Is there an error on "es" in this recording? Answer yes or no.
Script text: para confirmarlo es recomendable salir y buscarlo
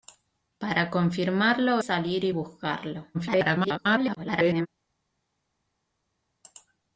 yes